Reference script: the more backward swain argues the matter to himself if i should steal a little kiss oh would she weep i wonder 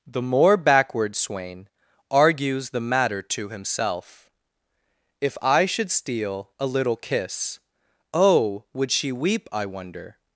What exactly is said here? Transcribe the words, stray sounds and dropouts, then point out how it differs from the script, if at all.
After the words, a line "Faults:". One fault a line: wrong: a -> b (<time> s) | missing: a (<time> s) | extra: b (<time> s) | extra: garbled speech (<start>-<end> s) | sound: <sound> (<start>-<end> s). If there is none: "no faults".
the more backward swain argues the matter to himself if i should steal a little kiss oh would she weep i wonder
Faults:
no faults